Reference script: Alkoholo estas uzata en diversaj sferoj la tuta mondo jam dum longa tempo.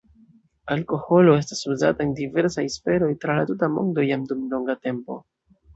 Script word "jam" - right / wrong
right